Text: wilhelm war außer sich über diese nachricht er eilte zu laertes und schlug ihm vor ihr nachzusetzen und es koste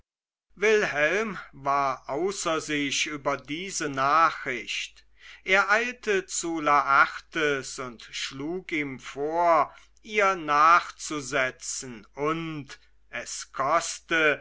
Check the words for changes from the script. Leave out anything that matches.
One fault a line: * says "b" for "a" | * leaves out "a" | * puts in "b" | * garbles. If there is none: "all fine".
all fine